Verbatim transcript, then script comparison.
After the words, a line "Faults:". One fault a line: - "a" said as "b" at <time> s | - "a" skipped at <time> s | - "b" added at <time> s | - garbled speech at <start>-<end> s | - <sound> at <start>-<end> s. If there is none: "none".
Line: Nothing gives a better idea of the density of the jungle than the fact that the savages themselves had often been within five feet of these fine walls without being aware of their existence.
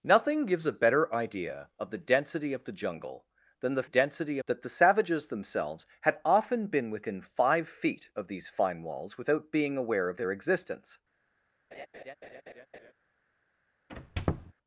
Nothing gives a better idea of the density of the jungle than the density that the savages themselves had often been within five feet of these fine walls without being aware of their existence.
Faults:
- "fact" said as "density" at 3.8 s
- laugh at 11.7-12.9 s
- squeak at 13.9-14.5 s